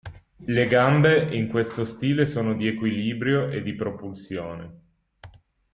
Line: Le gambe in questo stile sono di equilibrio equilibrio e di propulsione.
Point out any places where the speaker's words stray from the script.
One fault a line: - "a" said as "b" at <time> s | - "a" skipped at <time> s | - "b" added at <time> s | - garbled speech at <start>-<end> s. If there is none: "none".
- "equilibrio" skipped at 3.5 s